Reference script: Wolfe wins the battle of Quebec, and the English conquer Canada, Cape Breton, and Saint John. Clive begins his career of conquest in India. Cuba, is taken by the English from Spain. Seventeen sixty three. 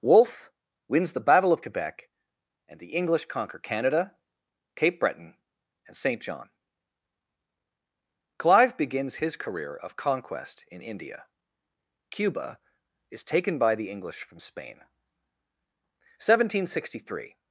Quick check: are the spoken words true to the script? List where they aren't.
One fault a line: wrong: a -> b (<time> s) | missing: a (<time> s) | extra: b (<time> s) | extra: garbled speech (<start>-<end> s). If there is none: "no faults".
no faults